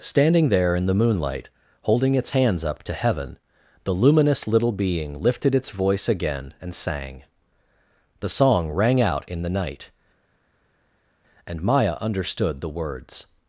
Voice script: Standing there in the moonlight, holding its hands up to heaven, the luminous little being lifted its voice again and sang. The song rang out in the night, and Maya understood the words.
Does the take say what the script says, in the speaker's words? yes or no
yes